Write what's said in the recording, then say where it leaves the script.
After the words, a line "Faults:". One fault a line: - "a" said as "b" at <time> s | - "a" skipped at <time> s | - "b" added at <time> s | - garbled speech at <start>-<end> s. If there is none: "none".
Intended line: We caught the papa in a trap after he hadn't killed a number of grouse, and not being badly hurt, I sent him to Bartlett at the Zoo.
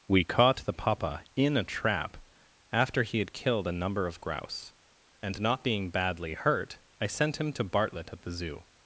We caught the papa in a trap after he had killed a number of grouse, and not being badly hurt, I sent him to Bartlett at the Zoo.
Faults:
- "hadn't" said as "had" at 3.2 s